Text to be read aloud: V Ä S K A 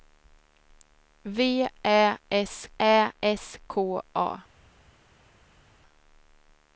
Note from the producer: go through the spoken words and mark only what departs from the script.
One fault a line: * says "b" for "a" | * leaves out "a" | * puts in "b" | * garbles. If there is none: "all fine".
* puts in "Ä S"